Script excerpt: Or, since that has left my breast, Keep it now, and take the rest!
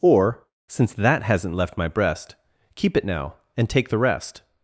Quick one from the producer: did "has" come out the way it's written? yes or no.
no